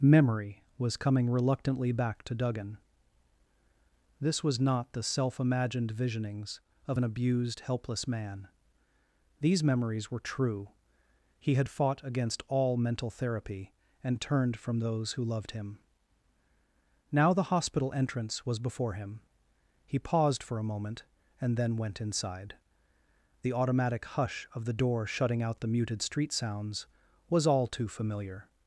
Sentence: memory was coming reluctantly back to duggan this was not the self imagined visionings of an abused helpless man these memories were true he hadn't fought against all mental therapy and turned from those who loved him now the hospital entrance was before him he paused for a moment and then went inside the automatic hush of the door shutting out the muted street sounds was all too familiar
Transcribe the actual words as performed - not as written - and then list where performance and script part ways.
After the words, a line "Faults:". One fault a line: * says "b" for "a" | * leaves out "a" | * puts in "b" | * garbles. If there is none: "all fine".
memory was coming reluctantly back to duggan this was not the self imagined visionings of an abused helpless man these memories were true he had fought against all mental therapy and turned from those who loved him now the hospital entrance was before him he paused for a moment and then went inside the automatic hush of the door shutting out the muted street sounds was all too familiar
Faults:
* says "had" for "hadn't"